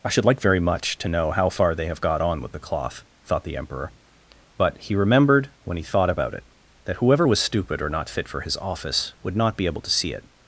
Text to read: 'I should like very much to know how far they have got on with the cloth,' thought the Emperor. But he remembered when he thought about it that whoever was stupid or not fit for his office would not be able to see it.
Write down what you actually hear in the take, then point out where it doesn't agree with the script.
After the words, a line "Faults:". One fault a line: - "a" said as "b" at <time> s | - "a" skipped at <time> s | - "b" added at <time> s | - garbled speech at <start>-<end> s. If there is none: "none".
'I should like very much to know how far they have got on with the cloth,' thought the Emperor. But he remembered when he thought about it that whoever was stupid or not fit for his office would not be able to see it.
Faults:
none